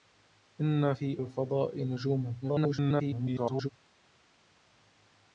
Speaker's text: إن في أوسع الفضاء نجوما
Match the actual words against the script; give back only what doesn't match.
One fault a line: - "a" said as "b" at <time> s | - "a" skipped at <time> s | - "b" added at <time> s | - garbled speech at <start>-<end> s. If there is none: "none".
- "أوسع" skipped at 1.2 s
- garbled speech at 2.4-3.7 s